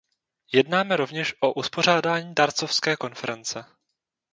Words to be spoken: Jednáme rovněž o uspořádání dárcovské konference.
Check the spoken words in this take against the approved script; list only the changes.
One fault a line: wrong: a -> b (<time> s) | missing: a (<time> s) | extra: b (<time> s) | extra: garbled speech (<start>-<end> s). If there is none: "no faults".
no faults